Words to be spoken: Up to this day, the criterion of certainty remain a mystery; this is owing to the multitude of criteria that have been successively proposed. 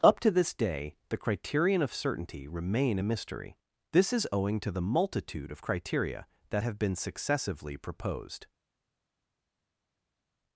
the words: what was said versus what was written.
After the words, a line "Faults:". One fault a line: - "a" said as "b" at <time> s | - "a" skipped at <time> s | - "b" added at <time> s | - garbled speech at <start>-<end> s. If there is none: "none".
Up to this day, the criterion of certainty remain a mystery; this is owing to the multitude of criteria that have been successively proposed.
Faults:
none